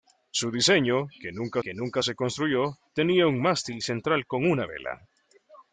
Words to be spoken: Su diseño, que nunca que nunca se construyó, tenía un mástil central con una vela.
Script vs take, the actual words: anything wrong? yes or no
no